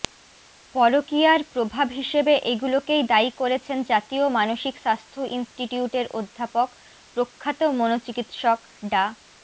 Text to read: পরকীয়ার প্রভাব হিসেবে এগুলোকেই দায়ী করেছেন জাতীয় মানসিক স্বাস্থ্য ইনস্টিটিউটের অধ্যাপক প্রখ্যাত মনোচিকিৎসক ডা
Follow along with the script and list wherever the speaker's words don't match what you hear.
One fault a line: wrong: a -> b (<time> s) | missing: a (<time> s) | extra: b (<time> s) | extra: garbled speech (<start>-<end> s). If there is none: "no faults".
no faults